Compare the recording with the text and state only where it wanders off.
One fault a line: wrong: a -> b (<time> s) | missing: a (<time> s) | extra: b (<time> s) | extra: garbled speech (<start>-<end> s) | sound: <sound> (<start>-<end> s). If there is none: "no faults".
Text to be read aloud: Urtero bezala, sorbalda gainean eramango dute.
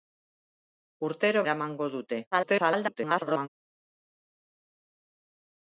missing: bezala sorbalda gainean (1.4 s)
extra: garbled speech (2.3-3.5 s)